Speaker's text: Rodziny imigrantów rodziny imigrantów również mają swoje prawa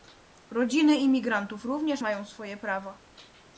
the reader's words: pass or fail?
fail